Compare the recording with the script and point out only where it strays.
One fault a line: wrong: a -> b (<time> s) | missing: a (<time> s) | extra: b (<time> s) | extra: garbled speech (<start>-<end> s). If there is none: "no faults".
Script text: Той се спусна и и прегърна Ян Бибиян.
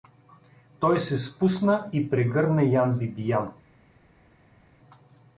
missing: и (2.1 s)